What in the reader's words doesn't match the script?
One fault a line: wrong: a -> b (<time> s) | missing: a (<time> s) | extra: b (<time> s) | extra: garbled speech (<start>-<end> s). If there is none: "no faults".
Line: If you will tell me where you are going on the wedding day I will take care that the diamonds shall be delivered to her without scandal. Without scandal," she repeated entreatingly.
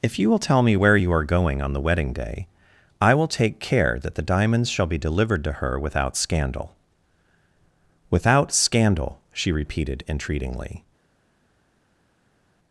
no faults